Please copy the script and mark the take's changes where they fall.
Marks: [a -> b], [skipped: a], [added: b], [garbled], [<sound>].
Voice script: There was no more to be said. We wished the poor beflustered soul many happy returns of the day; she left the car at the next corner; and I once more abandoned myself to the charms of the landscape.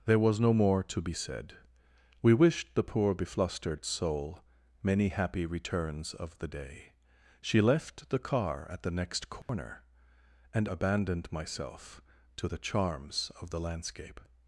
There was no more to be said. We wished the poor beflustered soul many happy returns of the day; she left the car at the next corner; [dropout] and [skipped: I once more] abandoned myself to the charms of the landscape.